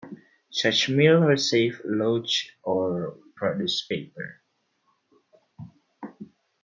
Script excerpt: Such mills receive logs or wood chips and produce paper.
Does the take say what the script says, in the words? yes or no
no